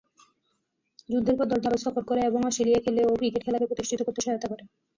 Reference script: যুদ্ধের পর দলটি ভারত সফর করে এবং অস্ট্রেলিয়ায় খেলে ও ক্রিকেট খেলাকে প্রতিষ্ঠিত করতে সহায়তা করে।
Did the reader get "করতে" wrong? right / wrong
right